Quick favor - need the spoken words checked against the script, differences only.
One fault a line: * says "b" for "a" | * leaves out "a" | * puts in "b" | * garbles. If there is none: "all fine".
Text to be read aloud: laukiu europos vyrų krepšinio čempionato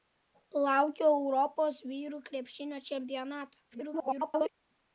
* garbles